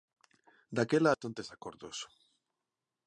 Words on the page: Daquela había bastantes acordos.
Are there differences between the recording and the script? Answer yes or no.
yes